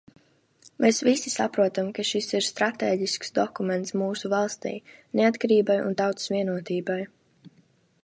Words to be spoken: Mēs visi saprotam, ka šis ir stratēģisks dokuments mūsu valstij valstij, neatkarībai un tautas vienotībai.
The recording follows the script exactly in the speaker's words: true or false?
false